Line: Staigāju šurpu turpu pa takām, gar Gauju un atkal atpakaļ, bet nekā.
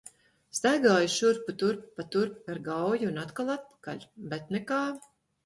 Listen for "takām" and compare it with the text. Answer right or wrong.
wrong